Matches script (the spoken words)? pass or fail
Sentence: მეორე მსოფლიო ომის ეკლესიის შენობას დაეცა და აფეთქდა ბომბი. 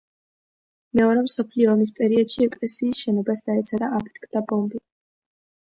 fail